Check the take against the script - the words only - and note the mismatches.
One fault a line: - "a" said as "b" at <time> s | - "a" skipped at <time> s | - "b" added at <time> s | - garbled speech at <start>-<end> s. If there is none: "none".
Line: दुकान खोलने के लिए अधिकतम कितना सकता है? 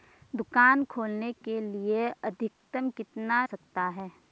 none